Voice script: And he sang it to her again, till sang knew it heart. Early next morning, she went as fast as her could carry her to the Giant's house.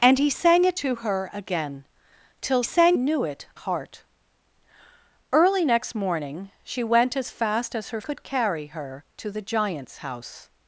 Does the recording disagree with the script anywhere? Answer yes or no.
no